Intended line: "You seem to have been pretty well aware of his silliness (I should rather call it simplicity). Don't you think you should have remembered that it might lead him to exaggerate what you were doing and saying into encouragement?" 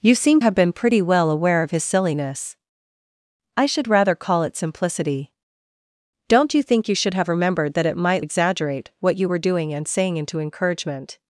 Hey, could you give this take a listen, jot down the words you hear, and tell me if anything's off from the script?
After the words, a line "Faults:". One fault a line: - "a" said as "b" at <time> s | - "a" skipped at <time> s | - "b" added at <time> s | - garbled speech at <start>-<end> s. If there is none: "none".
"You seem have been pretty well aware of his silliness (I should rather call it simplicity). Don't you think you should have remembered that it might exaggerate what you were doing and saying into encouragement?"
Faults:
- "to" skipped at 0.4 s
- "lead him to" skipped at 8.2 s